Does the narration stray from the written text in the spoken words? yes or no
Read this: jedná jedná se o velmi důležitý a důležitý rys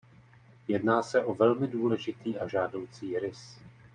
yes